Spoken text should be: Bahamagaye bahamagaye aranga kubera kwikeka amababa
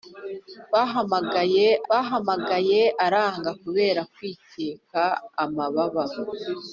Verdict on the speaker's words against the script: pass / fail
pass